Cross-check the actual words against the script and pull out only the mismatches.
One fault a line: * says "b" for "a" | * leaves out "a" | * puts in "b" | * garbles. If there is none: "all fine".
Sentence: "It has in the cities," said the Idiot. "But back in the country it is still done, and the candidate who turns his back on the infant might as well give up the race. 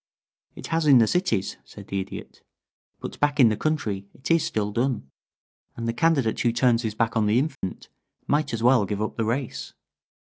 all fine